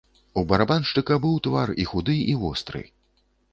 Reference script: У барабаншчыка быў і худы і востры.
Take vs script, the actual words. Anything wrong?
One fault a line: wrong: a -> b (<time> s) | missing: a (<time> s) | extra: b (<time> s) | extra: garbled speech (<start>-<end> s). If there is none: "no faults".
extra: твар (1.5 s)